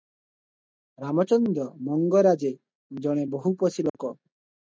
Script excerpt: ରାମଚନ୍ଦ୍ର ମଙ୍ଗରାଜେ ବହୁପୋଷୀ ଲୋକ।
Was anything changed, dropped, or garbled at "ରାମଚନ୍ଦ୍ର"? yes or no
no